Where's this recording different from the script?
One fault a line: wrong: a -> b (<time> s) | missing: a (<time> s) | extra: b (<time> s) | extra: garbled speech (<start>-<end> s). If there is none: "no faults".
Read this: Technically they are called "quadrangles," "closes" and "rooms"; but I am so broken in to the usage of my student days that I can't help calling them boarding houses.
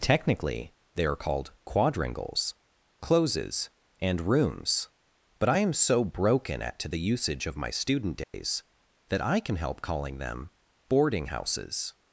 wrong: in -> at (6.6 s)
wrong: can't -> can (9.4 s)